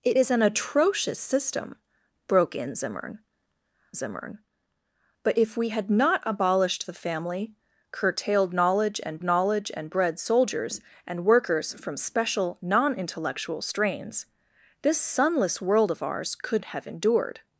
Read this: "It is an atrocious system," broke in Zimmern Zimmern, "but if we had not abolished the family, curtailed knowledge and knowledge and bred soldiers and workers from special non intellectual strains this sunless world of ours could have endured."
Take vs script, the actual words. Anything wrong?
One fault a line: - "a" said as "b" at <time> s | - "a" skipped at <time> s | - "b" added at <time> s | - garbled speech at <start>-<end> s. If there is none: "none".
none